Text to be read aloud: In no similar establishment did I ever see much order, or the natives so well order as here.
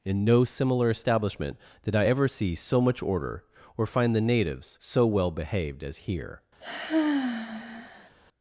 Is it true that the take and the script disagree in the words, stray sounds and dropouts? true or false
true